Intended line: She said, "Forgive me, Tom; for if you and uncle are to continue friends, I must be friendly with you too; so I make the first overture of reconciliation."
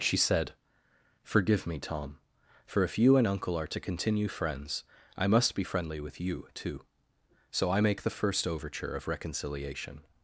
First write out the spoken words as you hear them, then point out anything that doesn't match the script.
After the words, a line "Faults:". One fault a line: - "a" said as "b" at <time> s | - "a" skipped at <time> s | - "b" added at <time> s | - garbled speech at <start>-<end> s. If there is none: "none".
She said, "Forgive me, Tom; for if you and uncle are to continue friends, I must be friendly with you too; so I make the first overture of reconciliation."
Faults:
none